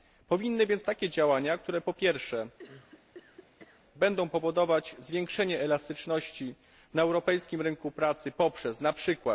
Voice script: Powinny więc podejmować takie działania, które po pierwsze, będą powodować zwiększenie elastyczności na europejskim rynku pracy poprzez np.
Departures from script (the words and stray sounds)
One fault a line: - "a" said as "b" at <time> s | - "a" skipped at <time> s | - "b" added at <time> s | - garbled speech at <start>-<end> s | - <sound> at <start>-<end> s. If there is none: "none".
- "podejmować" skipped at 0.8 s
- cough at 2.6-3.8 s